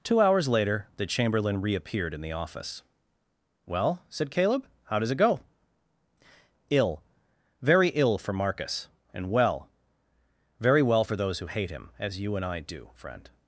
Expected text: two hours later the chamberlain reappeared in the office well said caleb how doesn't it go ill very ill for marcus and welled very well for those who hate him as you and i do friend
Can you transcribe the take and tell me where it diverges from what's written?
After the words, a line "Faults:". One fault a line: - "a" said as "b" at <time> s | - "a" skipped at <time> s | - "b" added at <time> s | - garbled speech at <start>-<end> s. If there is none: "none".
two hours later the chamberlain reappeared in the office well said caleb how does it go ill very ill for marcus and well very well for those who hate him as you and i do friend
Faults:
- "doesn't" said as "does" at 5.0 s
- "welled" said as "well" at 9.3 s